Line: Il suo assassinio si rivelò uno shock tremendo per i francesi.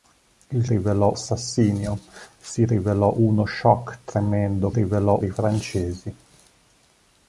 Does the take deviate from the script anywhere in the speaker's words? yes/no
yes